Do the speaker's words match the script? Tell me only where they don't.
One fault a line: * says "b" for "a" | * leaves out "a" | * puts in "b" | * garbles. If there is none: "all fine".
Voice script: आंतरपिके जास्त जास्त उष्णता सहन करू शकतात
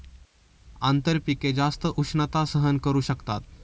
* leaves out "जास्त"